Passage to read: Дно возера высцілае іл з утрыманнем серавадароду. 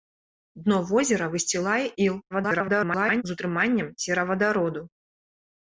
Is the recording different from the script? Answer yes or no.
yes